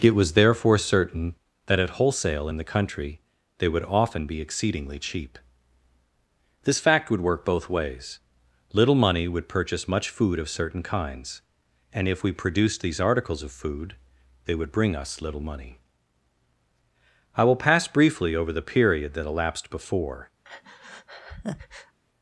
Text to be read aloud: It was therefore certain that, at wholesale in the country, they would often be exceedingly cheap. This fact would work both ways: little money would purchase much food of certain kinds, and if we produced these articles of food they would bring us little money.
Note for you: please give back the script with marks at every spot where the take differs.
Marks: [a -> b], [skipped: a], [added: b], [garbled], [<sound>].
It was therefore certain that, at wholesale in the country, they would often be exceedingly cheap. This fact would work both ways: little money would purchase much food of certain kinds, and if we produced these articles of food they would bring us little money. [added: I will pass briefly over the period that elapsed before] [breath]